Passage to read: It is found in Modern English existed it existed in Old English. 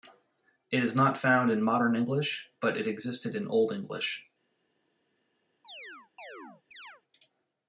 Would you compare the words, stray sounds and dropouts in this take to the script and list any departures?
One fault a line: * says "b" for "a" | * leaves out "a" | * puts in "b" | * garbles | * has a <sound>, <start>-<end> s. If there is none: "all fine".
* puts in "not"
* says "but" for "existed"
* has a chirp, 5.6-7.0 s